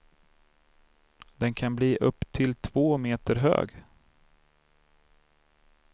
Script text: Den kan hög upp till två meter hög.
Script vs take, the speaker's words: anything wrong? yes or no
yes